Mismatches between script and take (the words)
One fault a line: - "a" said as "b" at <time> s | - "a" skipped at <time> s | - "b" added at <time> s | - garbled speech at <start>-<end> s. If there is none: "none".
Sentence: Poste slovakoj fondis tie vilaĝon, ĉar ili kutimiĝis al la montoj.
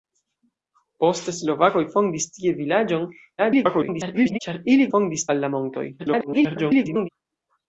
- garbled speech at 3.4-4.4 s
- "kutimiĝis" said as "fondis" at 4.9 s
- garbled speech at 6.0-7.1 s